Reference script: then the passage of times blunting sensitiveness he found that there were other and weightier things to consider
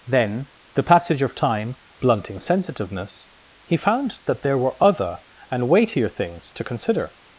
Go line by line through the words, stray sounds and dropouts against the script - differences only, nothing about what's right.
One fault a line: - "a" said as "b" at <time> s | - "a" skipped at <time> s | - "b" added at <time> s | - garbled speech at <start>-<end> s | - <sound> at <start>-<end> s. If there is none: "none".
- "times" said as "time" at 1.3 s